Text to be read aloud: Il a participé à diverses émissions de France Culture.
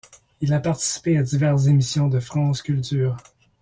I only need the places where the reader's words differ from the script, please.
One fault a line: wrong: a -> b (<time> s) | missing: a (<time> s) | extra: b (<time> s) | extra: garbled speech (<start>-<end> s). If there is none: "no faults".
no faults